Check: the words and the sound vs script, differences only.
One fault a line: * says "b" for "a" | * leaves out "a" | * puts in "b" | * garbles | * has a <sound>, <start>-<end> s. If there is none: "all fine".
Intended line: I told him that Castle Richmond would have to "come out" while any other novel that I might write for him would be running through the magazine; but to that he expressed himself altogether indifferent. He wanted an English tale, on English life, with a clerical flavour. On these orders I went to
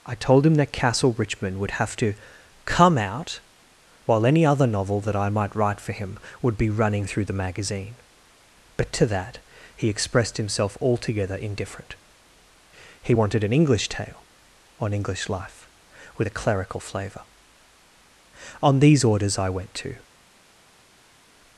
all fine